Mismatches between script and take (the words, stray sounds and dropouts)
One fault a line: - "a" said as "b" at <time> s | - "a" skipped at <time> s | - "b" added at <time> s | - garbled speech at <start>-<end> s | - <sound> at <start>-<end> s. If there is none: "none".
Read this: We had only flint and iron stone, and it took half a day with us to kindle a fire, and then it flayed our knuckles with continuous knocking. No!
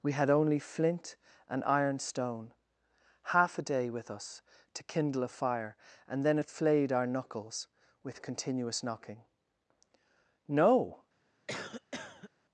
- "and it took" skipped at 2.5 s
- cough at 11.5-12.3 s